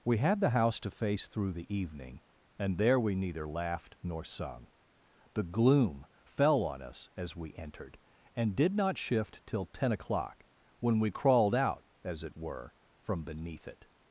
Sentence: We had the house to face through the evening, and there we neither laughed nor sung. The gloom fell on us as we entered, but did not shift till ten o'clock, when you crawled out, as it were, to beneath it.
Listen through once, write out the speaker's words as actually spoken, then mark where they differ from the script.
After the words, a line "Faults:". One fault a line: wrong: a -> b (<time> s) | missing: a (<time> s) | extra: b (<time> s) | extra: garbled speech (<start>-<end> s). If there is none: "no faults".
We had the house to face through the evening, and there we neither laughed nor sung. The gloom fell on us as we entered, and did not shift till ten o'clock, when we crawled out, as it were, from beneath it.
Faults:
wrong: but -> and (8.3 s)
wrong: you -> we (11.0 s)
wrong: to -> from (13.0 s)